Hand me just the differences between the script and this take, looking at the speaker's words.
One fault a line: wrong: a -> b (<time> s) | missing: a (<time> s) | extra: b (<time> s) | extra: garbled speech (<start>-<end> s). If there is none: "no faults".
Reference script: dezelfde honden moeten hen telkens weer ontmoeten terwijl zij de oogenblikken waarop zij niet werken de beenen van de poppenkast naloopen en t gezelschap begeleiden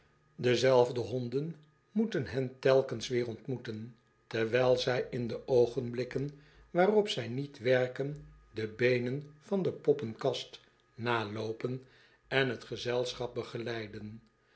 extra: in (5.1 s)